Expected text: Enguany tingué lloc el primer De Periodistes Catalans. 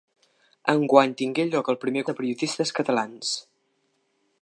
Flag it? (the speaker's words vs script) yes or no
no